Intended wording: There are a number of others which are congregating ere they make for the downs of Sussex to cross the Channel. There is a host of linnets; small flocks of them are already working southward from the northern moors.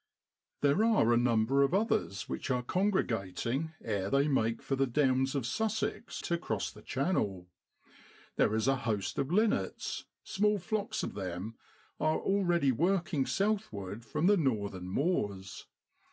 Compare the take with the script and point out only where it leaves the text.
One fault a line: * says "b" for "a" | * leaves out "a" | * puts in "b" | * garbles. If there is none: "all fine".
all fine